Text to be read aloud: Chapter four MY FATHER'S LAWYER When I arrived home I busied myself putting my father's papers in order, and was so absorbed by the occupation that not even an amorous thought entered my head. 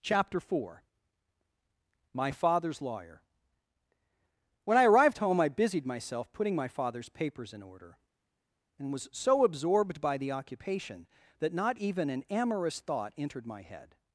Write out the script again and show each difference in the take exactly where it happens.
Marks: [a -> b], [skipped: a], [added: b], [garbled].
Chapter four MY FATHER'S LAWYER When I arrived home I busied myself putting my father's papers in order, and was so absorbed by the occupation that not even an amorous thought entered my head.